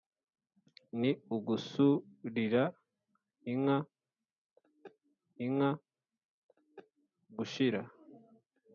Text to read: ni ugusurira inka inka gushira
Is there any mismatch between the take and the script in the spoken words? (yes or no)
no